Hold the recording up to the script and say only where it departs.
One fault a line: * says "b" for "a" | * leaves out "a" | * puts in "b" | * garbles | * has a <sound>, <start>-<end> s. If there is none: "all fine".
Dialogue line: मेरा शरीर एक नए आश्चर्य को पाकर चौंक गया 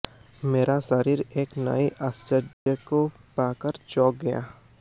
* has a dropout, 2.5-2.7 s